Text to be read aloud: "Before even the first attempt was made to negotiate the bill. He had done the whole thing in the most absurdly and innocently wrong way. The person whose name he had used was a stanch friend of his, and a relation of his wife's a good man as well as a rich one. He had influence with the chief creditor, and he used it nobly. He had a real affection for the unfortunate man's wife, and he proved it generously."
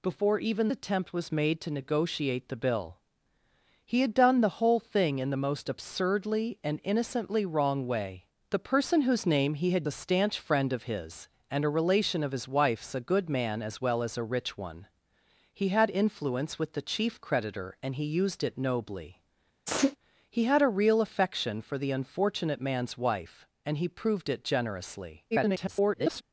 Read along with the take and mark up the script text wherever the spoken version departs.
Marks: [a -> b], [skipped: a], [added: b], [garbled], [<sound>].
"Before even [skipped: the first] attempt was made to negotiate the bill. He had done the whole thing in the most absurdly and innocently wrong way. The person whose name he had [skipped: used was] a stanch friend of his, and a relation of his wife's a good man as well as a rich one. He had influence with the chief creditor, and he used it nobly. [sneeze] He had a real affection for the unfortunate man's wife, and he proved it generously." [garbled]